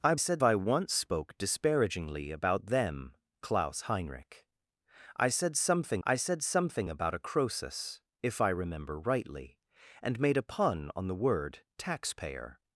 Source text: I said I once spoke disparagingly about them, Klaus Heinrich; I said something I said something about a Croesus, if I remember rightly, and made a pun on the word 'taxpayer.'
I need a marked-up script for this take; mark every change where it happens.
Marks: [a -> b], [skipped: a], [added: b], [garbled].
I said I once spoke disparagingly about them, Klaus Heinrich; I said something I said something about a Croesus, if I remember rightly, and made a pun on the word 'taxpayer.'